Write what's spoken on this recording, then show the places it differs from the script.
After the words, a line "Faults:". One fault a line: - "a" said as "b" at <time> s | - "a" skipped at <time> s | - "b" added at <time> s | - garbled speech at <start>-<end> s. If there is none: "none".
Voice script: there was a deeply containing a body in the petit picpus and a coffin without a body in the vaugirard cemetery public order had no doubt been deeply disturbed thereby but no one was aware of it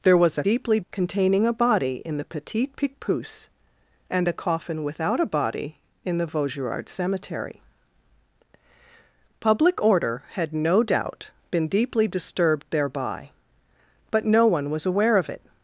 there was a deeply containing a body in the petit picpus and a coffin without a body in the vaugirard cemetery public order had no doubt been deeply disturbed thereby but no one was aware of it
Faults:
none